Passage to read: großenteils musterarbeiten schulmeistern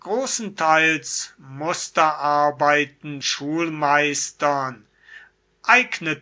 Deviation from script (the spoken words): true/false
false